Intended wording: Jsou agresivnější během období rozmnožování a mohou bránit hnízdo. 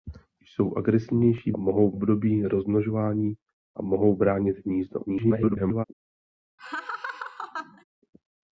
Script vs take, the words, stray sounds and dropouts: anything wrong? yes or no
yes